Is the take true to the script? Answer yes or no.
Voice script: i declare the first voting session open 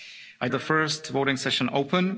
no